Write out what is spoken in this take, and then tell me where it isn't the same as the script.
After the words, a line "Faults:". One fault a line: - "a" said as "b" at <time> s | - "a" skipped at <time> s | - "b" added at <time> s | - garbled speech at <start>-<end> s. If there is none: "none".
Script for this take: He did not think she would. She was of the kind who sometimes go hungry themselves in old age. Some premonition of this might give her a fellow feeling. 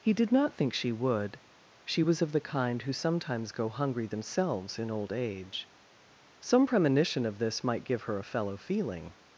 He did not think she would. She was of the kind who sometimes go hungry themselves in old age. Some premonition of this might give her a fellow feeling.
Faults:
none